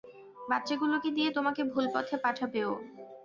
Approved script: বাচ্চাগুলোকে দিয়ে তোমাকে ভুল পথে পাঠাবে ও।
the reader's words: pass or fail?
pass